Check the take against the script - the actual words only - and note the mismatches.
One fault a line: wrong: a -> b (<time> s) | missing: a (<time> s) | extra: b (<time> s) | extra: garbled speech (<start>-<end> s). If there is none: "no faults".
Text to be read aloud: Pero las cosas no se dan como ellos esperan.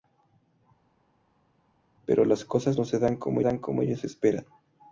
extra: dan como (3.4 s)